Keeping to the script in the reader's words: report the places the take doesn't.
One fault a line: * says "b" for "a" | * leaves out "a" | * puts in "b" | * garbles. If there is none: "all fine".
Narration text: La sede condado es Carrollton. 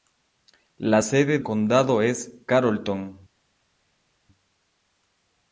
all fine